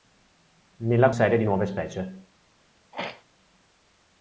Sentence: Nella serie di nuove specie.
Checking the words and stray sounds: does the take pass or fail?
fail